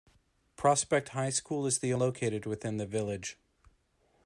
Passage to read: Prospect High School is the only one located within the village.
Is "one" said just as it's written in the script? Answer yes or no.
no